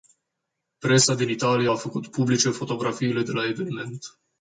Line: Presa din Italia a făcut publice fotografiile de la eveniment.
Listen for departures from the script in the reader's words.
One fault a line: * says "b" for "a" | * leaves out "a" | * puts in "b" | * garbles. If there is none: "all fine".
all fine